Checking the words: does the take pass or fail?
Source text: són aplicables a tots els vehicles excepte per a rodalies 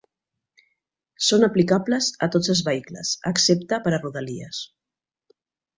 pass